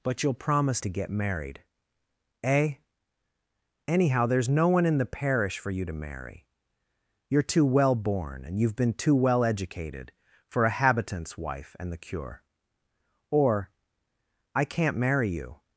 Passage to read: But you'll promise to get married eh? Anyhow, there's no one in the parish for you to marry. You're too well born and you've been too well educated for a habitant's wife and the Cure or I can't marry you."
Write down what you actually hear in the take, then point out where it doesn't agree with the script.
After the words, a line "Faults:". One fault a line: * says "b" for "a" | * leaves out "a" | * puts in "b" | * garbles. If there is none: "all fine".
But you'll promise to get married eh? Anyhow, there's no one in the parish for you to marry. You're too well born and you've been too well educated for a habitant's wife and the Cure or I can't marry you."
Faults:
all fine